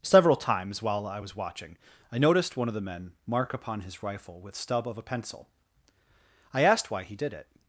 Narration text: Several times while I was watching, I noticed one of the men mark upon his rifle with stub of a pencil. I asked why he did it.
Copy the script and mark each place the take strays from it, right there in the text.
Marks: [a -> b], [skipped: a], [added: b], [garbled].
Several times while I was watching, I noticed one of the men mark upon his rifle with stub of a pencil. I asked why he did it.